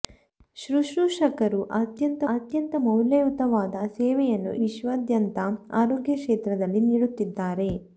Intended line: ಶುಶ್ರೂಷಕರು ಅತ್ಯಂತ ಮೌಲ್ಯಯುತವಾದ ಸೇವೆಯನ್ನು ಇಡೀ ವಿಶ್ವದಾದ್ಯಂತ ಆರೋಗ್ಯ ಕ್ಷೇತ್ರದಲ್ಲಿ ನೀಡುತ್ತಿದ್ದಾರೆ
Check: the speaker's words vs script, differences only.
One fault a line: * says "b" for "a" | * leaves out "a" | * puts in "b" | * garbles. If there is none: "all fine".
* puts in "ಅತ್ಯಂತ"
* leaves out "ಇಡೀ"